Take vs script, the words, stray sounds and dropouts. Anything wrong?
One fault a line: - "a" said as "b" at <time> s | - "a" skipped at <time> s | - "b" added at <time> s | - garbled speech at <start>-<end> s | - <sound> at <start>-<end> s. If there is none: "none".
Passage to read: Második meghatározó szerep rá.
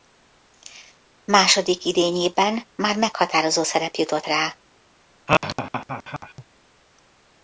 - "idényében már" added at 1.9 s
- "jutott" added at 3.9 s
- laugh at 5.3-6.4 s